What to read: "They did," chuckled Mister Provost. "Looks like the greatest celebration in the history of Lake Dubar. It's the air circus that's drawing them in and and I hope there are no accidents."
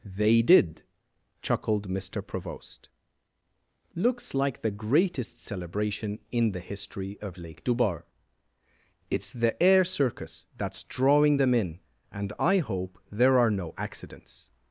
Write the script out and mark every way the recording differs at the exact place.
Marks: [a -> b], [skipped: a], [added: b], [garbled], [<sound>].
"They did," chuckled Mister Provost. "Looks like the greatest celebration in the history of Lake Dubar. It's the air circus that's drawing them in and [skipped: and] I hope there are no accidents."